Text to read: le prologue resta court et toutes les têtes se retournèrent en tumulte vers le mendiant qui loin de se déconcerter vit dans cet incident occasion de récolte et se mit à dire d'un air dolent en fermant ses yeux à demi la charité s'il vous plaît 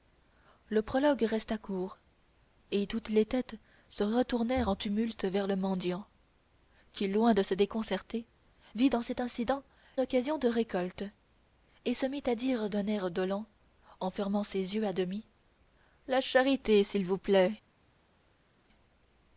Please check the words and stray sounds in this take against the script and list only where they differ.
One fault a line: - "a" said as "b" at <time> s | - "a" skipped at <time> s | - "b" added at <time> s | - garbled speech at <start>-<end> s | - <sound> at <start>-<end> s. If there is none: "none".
none